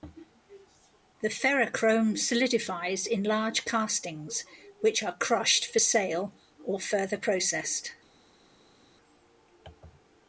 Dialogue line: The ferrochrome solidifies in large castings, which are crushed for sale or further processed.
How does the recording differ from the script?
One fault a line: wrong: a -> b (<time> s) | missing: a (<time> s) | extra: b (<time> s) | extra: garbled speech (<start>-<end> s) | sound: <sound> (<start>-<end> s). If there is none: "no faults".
no faults